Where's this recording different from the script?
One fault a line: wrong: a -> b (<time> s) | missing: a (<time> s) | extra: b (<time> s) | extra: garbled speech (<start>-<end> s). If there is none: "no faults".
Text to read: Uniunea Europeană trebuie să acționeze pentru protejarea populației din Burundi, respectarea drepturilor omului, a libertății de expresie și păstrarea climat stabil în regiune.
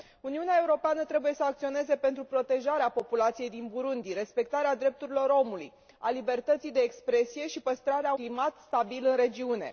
no faults